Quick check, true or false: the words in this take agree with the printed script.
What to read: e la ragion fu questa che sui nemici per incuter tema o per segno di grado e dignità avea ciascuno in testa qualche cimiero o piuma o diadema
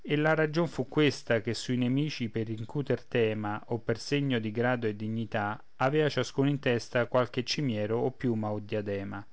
true